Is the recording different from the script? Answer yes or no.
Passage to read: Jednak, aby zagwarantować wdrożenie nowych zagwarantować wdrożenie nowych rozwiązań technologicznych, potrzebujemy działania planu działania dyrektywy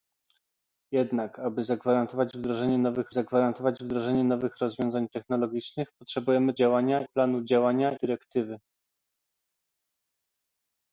no